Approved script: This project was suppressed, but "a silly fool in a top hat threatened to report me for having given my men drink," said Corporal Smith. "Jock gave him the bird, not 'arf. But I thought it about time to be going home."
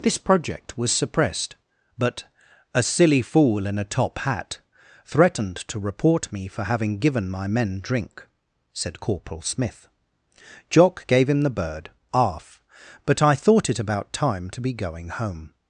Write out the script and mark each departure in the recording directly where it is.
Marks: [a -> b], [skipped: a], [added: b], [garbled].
This project was suppressed, but "a silly fool in a top hat threatened to report me for having given my men drink," said Corporal Smith. "Jock gave him the bird, [skipped: not] 'arf. But I thought it about time to be going home."